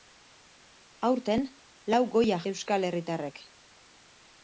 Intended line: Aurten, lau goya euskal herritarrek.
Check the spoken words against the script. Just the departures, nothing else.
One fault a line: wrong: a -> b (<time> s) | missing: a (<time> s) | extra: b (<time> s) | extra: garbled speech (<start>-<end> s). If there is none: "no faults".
no faults